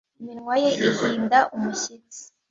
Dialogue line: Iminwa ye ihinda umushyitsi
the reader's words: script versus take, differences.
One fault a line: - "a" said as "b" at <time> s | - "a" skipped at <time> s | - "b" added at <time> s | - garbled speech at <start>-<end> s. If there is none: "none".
none